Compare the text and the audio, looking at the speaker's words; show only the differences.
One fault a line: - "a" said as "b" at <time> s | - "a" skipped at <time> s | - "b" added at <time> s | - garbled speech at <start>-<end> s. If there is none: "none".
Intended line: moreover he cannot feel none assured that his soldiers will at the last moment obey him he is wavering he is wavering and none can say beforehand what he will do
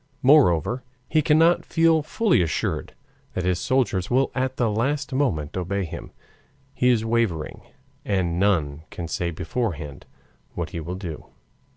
- "none" said as "fully" at 2.0 s
- "he is wavering" skipped at 7.6 s